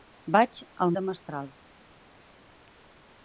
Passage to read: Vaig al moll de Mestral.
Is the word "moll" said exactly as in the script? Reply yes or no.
no